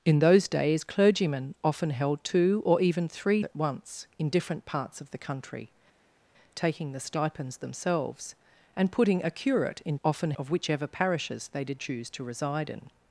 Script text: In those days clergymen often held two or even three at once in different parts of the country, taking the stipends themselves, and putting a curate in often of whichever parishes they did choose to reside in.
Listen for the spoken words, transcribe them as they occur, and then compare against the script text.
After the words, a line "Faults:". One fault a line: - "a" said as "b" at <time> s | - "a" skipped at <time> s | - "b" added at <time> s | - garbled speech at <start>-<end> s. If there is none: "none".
In those days clergymen often held two or even three at once in different parts of the country, taking the stipends themselves, and putting a curate in often of whichever parishes they did choose to reside in.
Faults:
none